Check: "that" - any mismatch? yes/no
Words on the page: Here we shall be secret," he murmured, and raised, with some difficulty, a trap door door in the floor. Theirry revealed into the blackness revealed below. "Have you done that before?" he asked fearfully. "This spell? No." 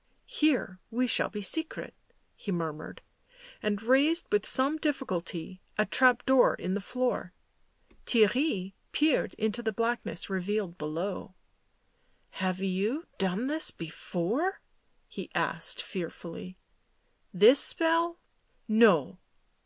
yes